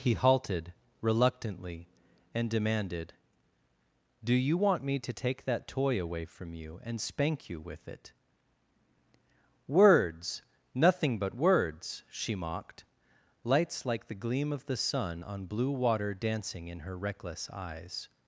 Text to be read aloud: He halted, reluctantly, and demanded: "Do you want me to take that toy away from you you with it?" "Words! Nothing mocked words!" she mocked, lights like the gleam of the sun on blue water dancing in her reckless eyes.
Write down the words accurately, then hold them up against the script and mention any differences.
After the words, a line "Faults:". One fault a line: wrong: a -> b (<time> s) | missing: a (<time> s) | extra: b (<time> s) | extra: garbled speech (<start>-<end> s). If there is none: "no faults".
He halted, reluctantly, and demanded: "Do you want me to take that toy away from you and spank you with it?" "Words! Nothing but words!" she mocked, lights like the gleam of the sun on blue water dancing in her reckless eyes.
Faults:
extra: and spank (6.8 s)
wrong: mocked -> but (11.2 s)